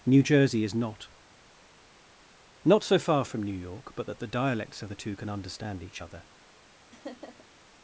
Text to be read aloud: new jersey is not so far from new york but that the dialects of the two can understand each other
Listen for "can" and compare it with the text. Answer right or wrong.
right